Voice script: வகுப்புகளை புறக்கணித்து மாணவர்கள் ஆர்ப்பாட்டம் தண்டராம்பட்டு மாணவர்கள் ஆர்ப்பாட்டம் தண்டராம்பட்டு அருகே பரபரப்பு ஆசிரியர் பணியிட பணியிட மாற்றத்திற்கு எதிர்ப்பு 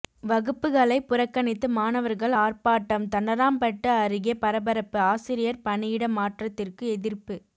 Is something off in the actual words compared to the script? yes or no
yes